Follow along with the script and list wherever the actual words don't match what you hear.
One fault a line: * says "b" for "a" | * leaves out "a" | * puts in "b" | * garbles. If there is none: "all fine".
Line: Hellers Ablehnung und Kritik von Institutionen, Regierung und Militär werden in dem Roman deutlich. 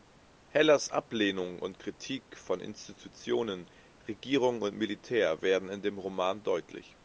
all fine